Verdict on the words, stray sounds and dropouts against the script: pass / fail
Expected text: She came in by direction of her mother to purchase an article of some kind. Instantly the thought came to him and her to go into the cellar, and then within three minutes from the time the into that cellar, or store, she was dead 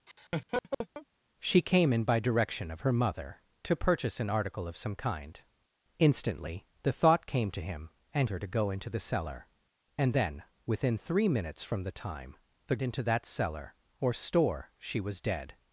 fail